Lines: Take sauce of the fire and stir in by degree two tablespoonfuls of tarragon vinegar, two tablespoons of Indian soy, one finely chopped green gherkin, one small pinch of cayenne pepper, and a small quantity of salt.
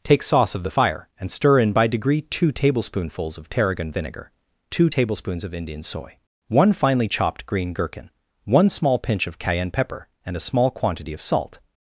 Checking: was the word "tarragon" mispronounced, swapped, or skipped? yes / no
no